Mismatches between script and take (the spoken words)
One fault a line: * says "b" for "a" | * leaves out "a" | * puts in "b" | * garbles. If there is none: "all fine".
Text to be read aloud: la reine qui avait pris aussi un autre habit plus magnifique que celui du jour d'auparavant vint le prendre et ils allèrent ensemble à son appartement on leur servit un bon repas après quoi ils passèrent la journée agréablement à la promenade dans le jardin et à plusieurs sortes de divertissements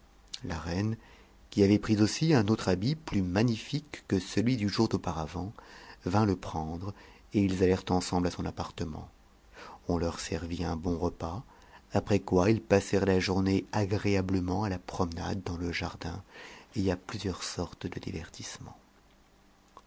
all fine